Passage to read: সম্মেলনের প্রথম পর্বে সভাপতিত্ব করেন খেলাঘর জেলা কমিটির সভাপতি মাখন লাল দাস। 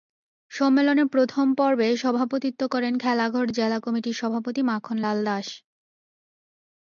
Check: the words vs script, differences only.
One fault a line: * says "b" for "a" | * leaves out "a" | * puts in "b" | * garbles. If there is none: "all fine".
all fine